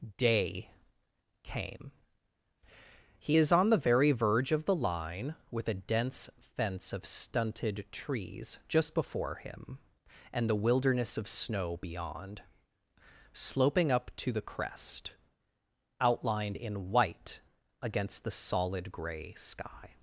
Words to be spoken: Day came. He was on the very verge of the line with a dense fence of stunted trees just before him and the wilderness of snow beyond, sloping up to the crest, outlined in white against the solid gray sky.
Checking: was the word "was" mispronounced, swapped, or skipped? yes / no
yes